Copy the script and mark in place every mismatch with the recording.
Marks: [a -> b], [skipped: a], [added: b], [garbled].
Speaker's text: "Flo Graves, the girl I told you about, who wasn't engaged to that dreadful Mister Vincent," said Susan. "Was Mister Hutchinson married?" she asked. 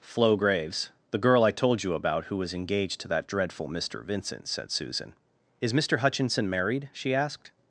"Flo Graves, the girl I told you about, who [wasn't -> was] engaged to that dreadful Mister Vincent," said Susan. ["Was -> Is] Mister Hutchinson married?" she asked.